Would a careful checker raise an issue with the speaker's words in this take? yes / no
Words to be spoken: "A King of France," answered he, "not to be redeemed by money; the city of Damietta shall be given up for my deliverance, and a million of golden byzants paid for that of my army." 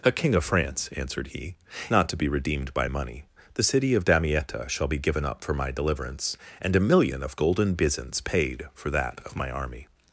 no